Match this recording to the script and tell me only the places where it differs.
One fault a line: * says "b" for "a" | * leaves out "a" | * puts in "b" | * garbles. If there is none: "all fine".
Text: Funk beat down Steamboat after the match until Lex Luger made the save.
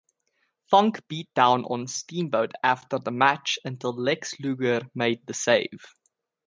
* puts in "on"